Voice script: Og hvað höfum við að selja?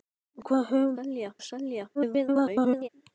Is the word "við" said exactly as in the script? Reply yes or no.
no